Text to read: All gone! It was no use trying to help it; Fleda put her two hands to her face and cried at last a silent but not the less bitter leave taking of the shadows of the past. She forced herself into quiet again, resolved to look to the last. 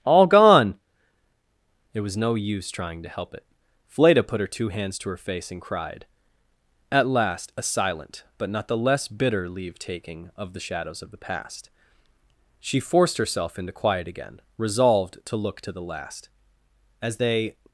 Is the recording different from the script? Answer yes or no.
yes